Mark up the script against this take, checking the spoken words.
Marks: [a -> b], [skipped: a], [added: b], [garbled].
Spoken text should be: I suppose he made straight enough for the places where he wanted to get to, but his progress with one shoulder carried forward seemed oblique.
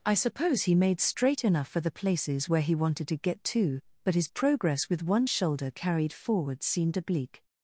I suppose he made straight enough for the places where he wanted to get to, but his progress with one shoulder carried forward seemed oblique.